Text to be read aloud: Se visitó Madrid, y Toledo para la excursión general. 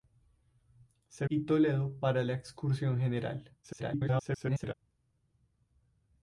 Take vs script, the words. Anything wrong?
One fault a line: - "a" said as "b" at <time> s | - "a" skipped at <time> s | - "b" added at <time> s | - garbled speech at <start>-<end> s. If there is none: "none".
- "visitó Madrid" skipped at 1.3 s
- garbled speech at 3.6-4.7 s